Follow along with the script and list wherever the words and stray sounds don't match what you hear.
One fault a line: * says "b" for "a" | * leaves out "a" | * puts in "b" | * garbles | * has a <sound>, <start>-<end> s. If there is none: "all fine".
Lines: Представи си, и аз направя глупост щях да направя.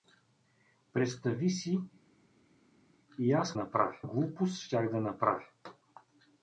all fine